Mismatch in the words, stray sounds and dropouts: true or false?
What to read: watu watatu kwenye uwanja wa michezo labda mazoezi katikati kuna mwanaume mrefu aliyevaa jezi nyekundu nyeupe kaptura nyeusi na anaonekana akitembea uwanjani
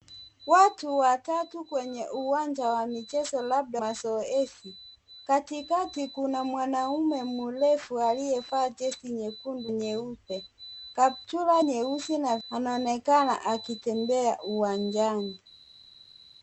false